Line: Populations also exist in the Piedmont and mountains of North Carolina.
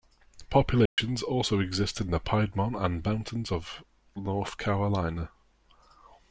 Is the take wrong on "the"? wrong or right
right